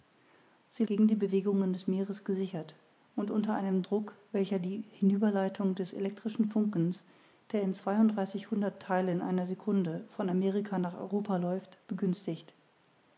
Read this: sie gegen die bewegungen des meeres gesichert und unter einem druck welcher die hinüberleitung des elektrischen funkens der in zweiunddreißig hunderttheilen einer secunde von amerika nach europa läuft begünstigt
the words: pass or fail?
pass